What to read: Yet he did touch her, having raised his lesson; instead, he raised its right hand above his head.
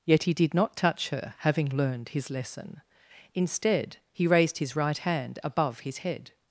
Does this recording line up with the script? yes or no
no